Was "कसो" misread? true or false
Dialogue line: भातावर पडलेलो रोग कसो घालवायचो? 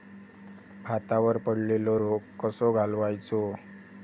false